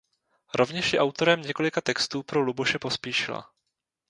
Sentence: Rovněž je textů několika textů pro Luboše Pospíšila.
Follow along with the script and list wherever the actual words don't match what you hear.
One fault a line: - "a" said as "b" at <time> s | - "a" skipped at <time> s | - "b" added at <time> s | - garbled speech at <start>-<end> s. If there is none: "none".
- "textů" said as "autorem" at 1.0 s